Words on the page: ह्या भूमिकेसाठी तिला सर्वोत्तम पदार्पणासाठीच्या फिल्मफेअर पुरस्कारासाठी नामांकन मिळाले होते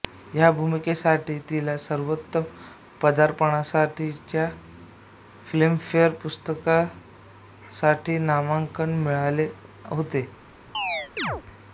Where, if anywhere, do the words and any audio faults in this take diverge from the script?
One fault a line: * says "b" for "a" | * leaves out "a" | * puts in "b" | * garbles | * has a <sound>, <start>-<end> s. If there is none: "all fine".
* has a chirp, 10.7-11.4 s